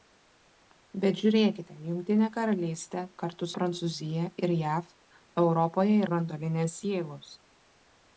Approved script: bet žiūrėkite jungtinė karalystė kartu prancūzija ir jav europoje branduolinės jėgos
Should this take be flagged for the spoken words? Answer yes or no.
no